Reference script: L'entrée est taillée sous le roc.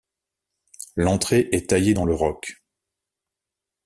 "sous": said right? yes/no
no